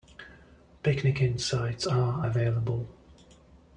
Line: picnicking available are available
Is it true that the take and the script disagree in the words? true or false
true